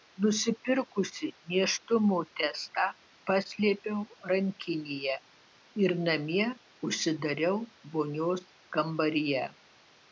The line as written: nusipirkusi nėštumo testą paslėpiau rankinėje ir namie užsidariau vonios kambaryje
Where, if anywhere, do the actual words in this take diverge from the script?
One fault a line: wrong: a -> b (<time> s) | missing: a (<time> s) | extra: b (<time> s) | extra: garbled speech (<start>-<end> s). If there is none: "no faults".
no faults